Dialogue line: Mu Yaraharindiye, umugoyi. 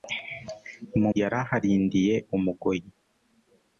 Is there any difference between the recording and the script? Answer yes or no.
no